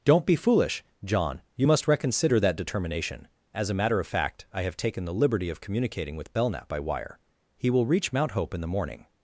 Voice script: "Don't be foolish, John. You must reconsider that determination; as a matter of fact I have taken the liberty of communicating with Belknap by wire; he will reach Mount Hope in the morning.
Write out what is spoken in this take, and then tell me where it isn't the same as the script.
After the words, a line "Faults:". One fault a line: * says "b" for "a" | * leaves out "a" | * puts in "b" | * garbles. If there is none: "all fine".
"Don't be foolish, John. You must reconsider that determination; as a matter of fact I have taken the liberty of communicating with Belknap by wire; he will reach Mount Hope in the morning.
Faults:
all fine